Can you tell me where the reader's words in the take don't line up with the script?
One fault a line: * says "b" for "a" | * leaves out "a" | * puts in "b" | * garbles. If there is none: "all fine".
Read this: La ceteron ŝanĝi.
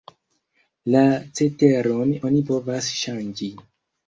* puts in "oni povas"